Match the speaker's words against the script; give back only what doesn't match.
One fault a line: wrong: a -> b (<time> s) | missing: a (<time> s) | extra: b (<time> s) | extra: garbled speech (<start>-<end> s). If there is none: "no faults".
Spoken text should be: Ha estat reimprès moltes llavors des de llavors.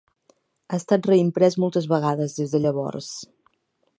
wrong: llavors -> vegades (1.9 s)